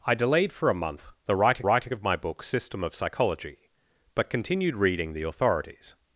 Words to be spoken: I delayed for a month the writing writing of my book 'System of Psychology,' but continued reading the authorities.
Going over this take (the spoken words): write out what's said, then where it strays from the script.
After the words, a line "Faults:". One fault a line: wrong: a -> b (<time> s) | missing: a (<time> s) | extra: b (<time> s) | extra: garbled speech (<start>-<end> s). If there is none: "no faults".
I delayed for a month the writing writing of my book 'System of Psychology,' but continued reading the authorities.
Faults:
no faults